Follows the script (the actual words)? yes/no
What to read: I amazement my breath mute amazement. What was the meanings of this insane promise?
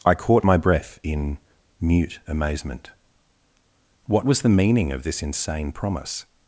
no